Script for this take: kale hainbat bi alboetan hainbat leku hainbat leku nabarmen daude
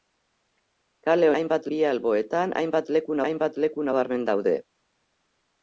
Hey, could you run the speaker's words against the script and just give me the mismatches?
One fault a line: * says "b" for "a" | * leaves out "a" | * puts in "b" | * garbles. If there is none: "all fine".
all fine